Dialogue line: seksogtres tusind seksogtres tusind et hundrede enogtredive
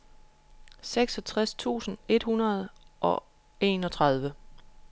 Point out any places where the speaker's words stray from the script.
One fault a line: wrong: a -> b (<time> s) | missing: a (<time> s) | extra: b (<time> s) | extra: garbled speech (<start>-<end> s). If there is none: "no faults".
missing: seksogtres tusind (2.0 s)
extra: og (3.0 s)